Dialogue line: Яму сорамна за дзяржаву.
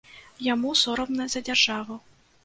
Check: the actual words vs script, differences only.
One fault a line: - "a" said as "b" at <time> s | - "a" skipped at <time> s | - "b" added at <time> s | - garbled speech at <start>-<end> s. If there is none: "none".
none